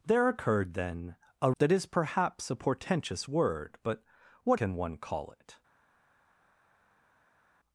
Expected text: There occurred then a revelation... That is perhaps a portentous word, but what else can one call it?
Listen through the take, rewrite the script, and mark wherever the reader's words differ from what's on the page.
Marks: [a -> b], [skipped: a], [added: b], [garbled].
There occurred then a [skipped: revelation...] That is perhaps a portentous word, but what [skipped: else] can one call it?